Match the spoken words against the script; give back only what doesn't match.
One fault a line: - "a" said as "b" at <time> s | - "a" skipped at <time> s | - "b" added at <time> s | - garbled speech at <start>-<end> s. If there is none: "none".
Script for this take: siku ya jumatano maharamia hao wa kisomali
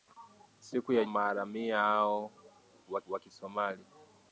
- "jumatano" skipped at 1.1 s
- "wa" added at 3.1 s